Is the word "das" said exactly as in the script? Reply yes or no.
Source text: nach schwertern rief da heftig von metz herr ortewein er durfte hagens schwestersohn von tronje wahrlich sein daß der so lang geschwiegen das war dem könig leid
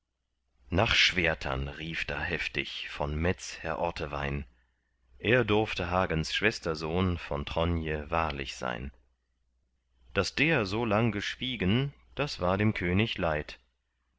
yes